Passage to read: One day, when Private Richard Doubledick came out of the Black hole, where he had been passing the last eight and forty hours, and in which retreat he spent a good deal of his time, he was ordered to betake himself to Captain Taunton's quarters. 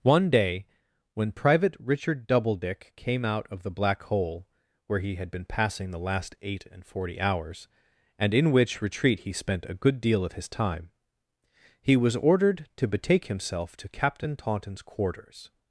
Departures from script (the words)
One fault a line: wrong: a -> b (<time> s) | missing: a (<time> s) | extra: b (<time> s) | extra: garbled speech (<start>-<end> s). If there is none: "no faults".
no faults